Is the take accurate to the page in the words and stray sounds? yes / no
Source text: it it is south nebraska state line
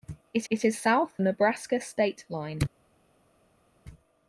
yes